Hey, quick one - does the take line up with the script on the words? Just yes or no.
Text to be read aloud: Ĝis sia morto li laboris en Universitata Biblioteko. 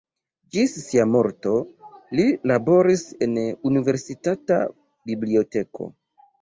yes